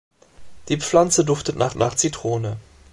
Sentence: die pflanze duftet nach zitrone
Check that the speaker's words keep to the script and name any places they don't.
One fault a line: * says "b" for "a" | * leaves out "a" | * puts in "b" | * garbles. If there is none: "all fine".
* puts in "nach"